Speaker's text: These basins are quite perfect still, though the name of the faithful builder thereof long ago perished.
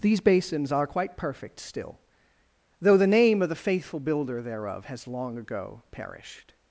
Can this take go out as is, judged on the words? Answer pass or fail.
fail